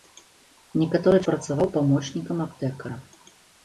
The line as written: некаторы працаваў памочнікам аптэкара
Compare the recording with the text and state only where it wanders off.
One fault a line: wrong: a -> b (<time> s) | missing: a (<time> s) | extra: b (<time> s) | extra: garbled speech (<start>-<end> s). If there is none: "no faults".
no faults